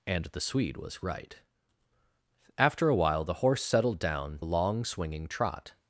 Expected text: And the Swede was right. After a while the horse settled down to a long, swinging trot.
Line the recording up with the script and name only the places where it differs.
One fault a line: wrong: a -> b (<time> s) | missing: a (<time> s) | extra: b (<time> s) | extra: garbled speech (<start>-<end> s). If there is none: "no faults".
missing: to (4.4 s)